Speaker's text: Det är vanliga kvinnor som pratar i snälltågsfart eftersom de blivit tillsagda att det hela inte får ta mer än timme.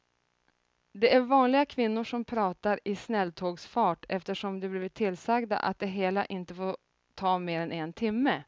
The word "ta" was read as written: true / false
true